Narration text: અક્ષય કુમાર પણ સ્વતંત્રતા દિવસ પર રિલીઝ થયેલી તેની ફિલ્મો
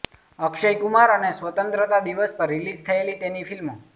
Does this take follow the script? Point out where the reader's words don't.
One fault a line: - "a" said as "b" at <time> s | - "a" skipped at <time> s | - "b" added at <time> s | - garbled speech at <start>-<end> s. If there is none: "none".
- "પણ" said as "અને" at 1.1 s